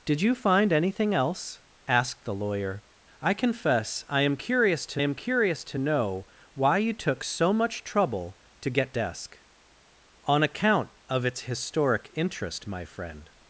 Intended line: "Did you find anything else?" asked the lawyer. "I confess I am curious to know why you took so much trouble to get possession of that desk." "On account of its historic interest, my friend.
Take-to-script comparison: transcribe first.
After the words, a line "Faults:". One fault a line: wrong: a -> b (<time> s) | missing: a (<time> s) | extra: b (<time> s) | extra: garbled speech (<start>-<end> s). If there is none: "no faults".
"Did you find anything else?" asked the lawyer. "I confess I am curious to am curious to know why you took so much trouble to get desk." "On account of its historic interest, my friend.
Faults:
extra: am curious to (5.0 s)
missing: possession of that (8.9 s)